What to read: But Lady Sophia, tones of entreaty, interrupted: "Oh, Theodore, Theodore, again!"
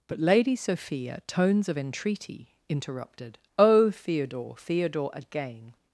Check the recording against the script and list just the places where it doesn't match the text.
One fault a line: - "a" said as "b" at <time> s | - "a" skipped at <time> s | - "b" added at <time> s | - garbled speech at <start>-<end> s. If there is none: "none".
none